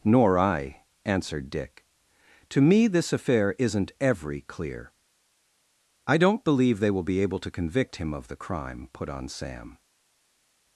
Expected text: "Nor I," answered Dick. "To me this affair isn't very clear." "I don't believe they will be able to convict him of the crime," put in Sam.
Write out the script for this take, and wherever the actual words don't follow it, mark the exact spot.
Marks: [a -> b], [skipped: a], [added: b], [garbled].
"Nor I," answered Dick. "To me this affair isn't [very -> every] clear." "I don't believe they will be able to convict him of the crime," put [in -> on] Sam.